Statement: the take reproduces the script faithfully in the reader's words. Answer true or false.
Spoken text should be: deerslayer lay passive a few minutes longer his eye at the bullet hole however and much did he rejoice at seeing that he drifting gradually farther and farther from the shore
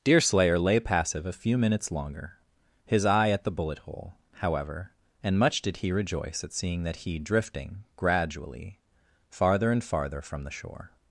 true